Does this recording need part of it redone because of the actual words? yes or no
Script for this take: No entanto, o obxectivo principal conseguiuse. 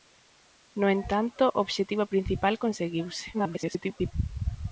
yes